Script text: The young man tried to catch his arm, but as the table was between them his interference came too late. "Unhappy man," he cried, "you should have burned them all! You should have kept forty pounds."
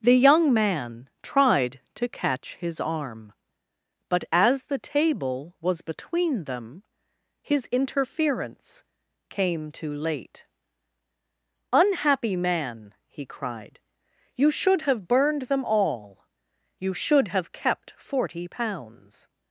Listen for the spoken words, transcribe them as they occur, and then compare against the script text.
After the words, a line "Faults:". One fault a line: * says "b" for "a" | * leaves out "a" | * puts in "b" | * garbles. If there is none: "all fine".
The young man tried to catch his arm, but as the table was between them his interference came too late. "Unhappy man," he cried, "you should have burned them all! You should have kept forty pounds."
Faults:
all fine